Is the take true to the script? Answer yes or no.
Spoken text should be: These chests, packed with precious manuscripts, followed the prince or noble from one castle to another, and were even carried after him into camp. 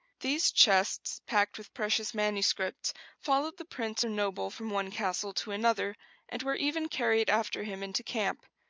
yes